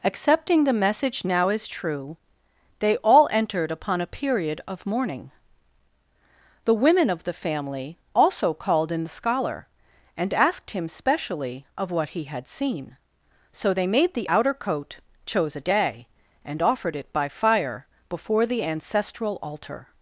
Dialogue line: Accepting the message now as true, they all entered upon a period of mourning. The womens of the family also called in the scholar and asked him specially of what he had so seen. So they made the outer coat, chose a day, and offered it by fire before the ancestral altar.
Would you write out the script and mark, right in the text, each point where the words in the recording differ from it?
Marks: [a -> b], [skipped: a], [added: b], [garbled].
Accepting the message now as true, they all entered upon a period of mourning. The [womens -> women] of the family also called in the scholar and asked him specially of what he had [skipped: so] seen. So they made the outer coat, chose a day, and offered it by fire before the ancestral altar.